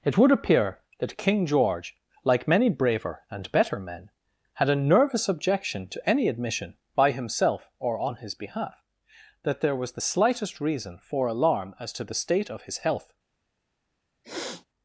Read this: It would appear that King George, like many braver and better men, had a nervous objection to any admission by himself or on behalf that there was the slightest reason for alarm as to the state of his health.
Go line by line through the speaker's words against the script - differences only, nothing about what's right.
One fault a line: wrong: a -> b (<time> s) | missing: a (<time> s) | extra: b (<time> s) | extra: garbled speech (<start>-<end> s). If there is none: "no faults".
extra: his (8.2 s)